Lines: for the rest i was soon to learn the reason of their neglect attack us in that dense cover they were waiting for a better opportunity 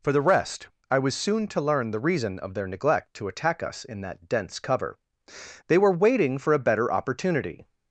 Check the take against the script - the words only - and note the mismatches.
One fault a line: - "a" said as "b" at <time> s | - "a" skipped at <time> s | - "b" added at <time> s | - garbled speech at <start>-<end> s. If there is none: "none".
- "to" added at 3.1 s